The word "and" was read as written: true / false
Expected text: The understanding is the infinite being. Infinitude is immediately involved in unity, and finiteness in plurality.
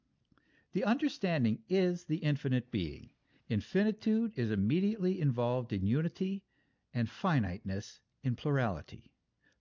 true